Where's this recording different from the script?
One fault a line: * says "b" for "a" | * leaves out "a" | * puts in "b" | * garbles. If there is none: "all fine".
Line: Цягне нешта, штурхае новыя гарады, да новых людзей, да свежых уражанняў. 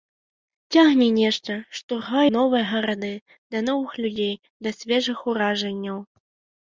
all fine